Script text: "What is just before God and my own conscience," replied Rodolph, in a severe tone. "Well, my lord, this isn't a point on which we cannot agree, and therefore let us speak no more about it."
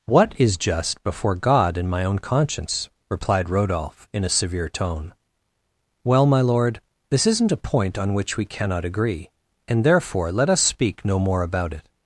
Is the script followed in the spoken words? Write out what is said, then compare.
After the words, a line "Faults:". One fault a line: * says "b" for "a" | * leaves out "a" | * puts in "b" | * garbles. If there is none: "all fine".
"What is just before God and my own conscience," replied Rodolph, in a severe tone. "Well, my lord, this isn't a point on which we cannot agree, and therefore let us speak no more about it."
Faults:
all fine